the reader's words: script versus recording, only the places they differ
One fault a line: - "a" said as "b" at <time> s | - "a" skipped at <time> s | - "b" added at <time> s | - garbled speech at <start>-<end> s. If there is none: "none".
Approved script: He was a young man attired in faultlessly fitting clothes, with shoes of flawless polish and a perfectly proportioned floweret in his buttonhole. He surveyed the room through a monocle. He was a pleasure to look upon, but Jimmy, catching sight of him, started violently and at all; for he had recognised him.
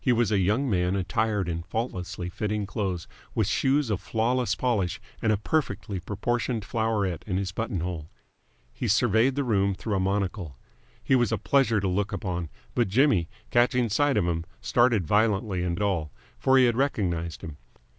none